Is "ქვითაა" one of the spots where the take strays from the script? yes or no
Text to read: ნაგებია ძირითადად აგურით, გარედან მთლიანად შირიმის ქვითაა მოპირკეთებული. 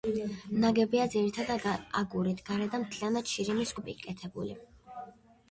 yes